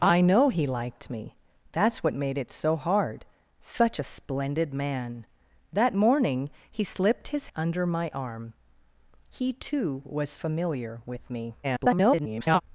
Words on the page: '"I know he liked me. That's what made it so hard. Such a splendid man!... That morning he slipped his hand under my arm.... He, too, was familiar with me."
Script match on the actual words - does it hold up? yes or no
no